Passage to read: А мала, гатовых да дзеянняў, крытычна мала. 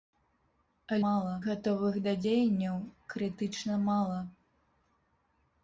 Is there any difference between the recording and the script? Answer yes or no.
no